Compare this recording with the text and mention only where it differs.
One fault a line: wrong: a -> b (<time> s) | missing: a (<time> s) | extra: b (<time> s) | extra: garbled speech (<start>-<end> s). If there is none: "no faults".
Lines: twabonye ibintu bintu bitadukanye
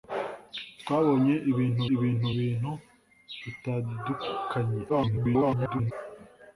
extra: ibintu (1.9 s)
extra: garbled speech (4.9-5.9 s)